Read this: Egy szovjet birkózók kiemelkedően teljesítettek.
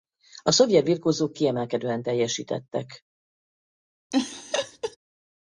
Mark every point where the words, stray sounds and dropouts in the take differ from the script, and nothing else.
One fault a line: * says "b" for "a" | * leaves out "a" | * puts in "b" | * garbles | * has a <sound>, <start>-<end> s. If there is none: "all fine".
* says "A" for "Egy"
* has a laugh, 4.1-5.0 s